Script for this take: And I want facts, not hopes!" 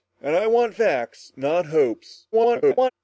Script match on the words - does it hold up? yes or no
no